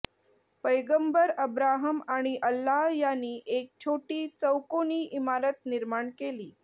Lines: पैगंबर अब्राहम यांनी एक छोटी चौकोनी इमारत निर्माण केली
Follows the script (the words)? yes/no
no